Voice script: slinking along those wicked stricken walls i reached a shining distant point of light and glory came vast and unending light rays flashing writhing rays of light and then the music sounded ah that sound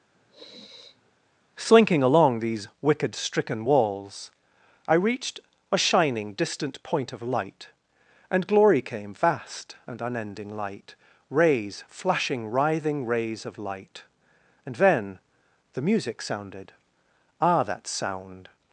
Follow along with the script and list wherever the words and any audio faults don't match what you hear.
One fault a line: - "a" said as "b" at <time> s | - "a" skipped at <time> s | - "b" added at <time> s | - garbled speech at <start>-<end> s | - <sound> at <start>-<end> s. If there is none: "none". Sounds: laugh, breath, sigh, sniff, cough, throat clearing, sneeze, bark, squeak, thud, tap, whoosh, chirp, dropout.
- sniff at 0.1-1.1 s
- "those" said as "these" at 2.4 s